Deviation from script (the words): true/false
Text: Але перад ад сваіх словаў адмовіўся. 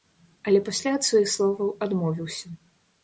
true